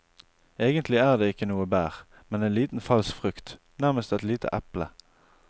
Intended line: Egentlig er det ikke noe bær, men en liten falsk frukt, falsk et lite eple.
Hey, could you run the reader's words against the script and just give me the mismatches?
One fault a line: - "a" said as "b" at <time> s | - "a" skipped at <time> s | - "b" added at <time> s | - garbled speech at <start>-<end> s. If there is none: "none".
- "falsk" said as "nærmest" at 3.8 s